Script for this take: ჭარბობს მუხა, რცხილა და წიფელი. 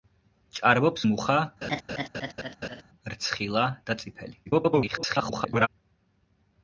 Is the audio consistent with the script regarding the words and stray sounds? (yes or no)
no